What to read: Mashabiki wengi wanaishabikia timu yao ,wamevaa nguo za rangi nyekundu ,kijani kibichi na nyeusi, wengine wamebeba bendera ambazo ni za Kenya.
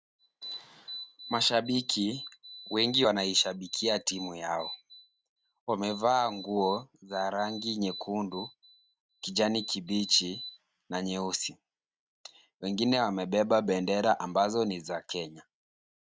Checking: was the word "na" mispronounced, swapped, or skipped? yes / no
no